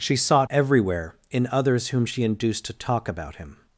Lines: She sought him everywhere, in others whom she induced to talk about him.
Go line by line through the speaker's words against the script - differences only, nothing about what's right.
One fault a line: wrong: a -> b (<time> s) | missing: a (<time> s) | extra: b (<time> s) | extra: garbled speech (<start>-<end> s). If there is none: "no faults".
missing: him (0.5 s)